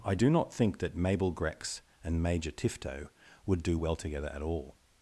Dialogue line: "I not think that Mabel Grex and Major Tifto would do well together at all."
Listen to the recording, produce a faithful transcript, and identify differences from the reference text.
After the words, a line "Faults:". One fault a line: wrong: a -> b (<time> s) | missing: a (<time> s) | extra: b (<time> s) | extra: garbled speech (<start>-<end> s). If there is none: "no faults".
"I do not think that Mabel Grex and Major Tifto would do well together at all."
Faults:
extra: do (0.1 s)